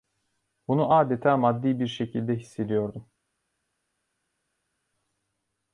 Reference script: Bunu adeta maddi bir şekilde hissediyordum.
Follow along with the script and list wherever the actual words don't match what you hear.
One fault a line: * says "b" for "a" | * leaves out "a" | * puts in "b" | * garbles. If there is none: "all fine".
all fine